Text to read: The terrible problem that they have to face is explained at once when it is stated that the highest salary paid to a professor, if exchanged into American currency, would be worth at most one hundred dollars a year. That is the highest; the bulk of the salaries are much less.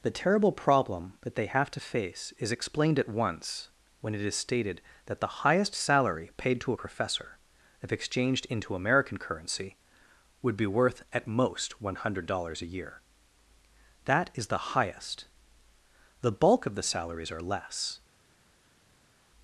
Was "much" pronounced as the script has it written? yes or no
no